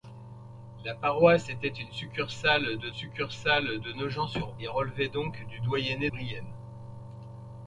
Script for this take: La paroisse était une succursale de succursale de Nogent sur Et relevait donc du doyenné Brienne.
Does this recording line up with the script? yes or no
yes